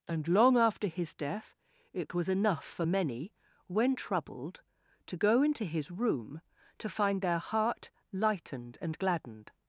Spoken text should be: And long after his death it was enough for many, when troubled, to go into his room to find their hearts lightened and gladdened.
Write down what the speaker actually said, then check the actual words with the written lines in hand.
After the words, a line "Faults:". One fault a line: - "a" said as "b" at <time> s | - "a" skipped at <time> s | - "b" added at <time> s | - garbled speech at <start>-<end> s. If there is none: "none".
And long after his death it was enough for many, when troubled, to go into his room to find their heart lightened and gladdened.
Faults:
- "hearts" said as "heart" at 7.4 s